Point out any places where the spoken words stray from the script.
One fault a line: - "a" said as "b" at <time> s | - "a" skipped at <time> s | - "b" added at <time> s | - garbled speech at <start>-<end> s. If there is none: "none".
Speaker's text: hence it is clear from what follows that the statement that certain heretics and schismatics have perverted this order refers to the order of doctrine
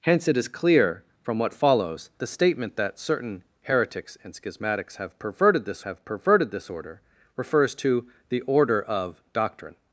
- "that" skipped at 2.1 s
- "have perverted this" added at 5.8 s